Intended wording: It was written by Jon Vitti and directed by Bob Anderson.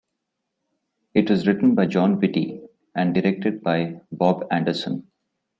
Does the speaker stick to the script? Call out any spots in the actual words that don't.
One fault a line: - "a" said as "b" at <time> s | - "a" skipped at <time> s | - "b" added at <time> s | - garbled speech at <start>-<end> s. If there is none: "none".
none